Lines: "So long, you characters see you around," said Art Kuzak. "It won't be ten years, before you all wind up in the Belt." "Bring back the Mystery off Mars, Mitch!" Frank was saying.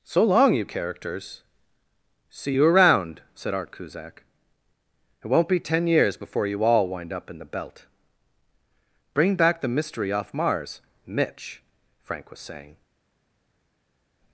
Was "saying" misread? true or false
false